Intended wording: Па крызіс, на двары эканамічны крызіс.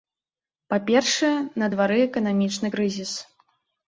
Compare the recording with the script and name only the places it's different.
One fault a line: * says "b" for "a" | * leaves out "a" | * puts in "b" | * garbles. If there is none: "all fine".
* says "першае" for "крызіс"